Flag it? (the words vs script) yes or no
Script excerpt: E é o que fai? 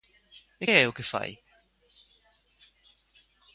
no